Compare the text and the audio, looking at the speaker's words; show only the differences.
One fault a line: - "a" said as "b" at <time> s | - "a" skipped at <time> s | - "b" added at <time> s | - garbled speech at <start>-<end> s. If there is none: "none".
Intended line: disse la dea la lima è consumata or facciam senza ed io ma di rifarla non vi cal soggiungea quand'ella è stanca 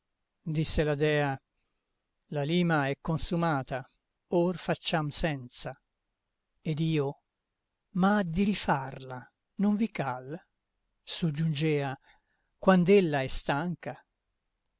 none